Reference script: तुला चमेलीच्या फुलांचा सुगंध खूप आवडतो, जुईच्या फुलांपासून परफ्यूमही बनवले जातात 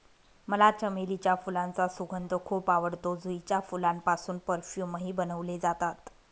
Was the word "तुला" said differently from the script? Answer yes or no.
yes